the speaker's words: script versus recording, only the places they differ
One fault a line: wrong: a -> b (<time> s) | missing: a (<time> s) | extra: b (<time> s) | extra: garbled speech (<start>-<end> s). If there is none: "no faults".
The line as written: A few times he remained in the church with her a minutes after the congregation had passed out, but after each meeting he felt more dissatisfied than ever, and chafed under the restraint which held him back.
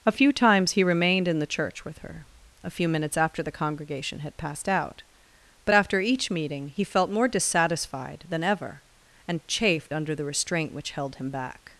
extra: few (2.7 s)